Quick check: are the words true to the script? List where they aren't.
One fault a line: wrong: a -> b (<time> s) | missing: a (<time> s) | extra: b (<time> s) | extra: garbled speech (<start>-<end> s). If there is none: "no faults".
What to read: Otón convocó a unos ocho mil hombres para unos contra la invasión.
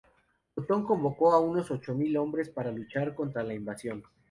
wrong: unos -> luchar (2.7 s)